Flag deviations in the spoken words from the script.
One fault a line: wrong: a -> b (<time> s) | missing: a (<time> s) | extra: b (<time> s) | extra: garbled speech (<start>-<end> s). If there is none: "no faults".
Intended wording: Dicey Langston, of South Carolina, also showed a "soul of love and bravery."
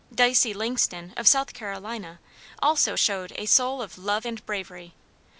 no faults